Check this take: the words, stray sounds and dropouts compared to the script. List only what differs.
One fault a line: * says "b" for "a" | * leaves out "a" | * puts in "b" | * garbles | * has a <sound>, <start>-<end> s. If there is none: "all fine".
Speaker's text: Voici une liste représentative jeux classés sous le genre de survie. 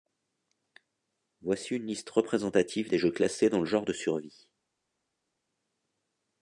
* puts in "des"
* says "dans" for "sous"